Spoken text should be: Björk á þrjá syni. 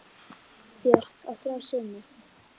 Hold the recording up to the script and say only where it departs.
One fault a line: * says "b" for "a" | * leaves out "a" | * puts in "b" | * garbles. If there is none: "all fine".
all fine